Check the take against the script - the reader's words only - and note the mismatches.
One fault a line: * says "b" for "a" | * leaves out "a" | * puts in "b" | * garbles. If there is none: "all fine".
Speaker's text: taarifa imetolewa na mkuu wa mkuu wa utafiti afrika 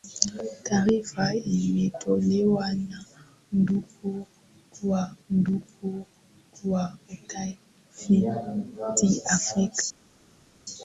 all fine